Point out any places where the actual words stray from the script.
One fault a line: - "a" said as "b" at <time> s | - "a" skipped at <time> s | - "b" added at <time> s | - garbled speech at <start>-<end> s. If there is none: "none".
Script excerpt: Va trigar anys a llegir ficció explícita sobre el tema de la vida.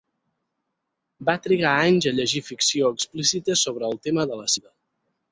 none